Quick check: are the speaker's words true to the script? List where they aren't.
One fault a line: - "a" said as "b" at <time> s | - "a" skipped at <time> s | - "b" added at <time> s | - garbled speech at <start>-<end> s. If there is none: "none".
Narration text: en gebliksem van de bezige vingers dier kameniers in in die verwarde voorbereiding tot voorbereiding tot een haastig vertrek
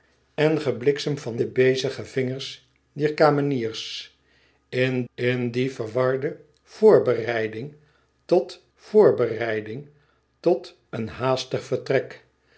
none